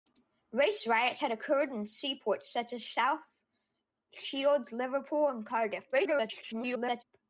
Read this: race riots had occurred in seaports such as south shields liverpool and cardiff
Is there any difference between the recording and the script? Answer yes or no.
yes